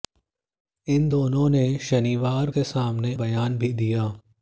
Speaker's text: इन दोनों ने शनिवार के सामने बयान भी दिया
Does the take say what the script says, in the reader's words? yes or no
yes